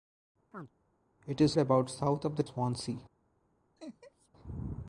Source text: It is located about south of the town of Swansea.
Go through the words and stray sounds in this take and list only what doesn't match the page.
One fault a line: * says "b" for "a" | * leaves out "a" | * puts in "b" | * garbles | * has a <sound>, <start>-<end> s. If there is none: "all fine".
* has a chirp, 0.5-0.7 s
* leaves out "located"
* leaves out "town of"
* has a laugh, 3.8-4.3 s